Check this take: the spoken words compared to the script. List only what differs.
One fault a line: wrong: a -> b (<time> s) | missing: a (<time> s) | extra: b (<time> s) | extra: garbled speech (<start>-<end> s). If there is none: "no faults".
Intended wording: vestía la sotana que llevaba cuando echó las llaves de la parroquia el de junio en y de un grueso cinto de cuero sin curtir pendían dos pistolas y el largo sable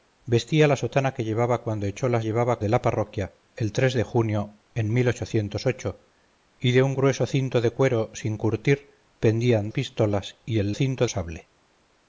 wrong: llaves -> llevaba (2.2 s)
missing: dos (9.7 s)
wrong: largo -> cinto (10.7 s)